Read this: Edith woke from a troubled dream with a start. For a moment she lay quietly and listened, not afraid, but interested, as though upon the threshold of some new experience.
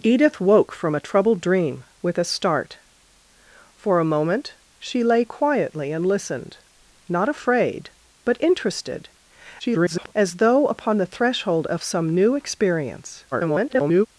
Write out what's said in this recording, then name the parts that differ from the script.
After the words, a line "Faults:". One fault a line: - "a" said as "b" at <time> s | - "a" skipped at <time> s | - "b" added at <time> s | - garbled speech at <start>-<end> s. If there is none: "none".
Edith woke from a troubled dream with a start. For a moment she lay quietly and listened, not afraid, but interested, [garbled] as though upon the threshold of some new experience. [garbled]
Faults:
- garbled speech at 9.6-10.1 s
- garbled speech at 13.3-14.1 s